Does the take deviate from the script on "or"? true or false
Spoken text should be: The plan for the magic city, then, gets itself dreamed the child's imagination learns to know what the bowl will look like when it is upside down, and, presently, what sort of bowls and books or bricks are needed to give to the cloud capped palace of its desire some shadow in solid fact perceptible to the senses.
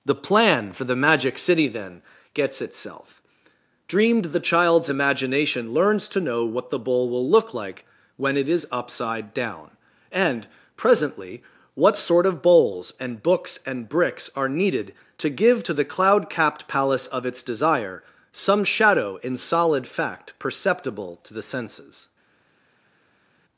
true